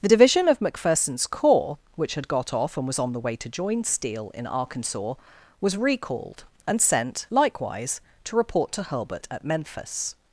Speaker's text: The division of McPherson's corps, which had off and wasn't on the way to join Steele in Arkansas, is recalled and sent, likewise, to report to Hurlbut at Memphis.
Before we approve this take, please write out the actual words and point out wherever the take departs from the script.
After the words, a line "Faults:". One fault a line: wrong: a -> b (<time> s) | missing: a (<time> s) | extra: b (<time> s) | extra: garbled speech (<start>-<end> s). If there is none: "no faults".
The division of McPherson's corps, which had got off and was on the way to join Steele in Arkansas, was recalled and sent, likewise, to report to Hurlbut at Memphis.
Faults:
extra: got (2.3 s)
wrong: wasn't -> was (2.9 s)
wrong: is -> was (5.6 s)